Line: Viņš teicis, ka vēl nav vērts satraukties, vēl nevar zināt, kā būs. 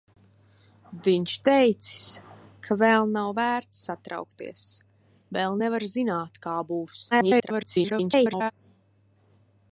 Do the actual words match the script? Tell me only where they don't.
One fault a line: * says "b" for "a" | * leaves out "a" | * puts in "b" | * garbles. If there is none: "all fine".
* garbles